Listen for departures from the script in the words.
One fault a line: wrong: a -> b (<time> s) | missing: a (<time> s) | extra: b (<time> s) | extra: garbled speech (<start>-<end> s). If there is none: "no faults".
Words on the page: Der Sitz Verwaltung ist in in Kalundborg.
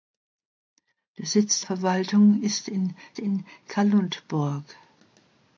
no faults